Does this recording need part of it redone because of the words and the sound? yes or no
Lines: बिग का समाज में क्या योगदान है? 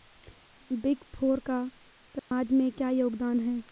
yes